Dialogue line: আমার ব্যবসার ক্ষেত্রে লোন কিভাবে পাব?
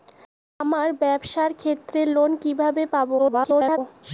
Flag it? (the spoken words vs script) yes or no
yes